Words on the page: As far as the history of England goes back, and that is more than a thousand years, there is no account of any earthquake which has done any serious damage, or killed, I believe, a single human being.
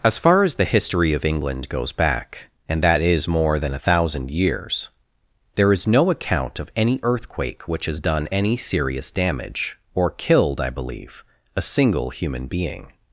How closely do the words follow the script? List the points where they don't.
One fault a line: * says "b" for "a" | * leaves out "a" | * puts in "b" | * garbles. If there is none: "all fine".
all fine